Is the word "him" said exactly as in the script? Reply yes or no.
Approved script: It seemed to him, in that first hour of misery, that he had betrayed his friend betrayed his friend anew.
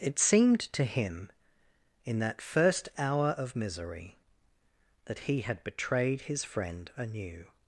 yes